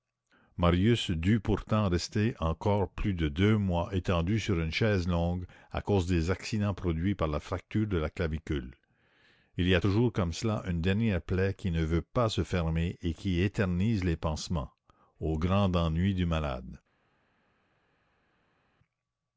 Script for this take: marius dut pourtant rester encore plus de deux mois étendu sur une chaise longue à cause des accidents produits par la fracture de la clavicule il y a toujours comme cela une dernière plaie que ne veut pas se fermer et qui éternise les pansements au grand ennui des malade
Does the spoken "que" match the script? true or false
false